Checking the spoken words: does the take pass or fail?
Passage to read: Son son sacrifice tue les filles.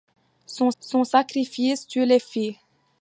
pass